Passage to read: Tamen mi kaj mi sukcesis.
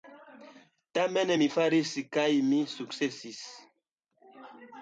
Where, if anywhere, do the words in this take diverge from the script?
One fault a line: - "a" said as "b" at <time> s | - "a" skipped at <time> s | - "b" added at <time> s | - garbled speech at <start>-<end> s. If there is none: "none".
- "faris" added at 1.5 s